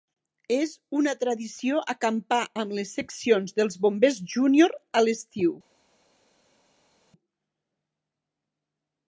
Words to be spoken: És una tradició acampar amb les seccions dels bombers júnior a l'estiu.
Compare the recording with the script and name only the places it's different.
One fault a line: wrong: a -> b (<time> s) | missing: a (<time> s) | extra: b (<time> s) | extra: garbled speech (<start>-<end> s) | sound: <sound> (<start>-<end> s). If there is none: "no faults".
no faults